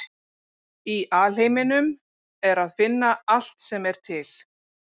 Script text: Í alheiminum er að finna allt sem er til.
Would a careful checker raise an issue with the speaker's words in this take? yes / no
no